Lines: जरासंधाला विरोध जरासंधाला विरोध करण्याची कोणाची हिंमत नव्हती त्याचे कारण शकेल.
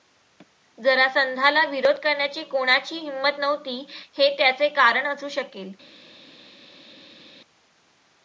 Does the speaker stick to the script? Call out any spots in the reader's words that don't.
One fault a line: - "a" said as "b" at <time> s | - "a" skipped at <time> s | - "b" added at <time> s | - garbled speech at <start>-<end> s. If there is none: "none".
- "जरासंधाला विरोध" skipped at 2.0 s
- "हे" added at 4.2 s
- "असू" added at 5.1 s